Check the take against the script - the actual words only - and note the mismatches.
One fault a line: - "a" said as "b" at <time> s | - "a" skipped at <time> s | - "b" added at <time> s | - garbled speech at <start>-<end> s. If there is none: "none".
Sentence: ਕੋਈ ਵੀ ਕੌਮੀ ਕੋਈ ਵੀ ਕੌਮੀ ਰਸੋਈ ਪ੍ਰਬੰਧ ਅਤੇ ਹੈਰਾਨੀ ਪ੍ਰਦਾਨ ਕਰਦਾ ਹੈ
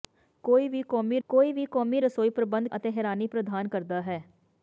none